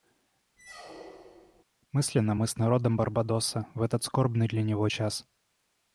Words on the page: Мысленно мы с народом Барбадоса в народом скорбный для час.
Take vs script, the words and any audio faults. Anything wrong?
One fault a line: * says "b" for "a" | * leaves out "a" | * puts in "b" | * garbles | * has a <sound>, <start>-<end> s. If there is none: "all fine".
* has a squeak, 0.6-1.6 s
* says "этот" for "народом"
* puts in "него"